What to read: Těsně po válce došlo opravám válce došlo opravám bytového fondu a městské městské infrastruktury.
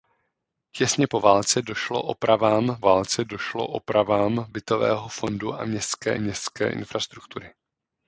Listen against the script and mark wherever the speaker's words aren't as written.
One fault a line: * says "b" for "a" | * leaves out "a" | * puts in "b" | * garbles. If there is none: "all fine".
all fine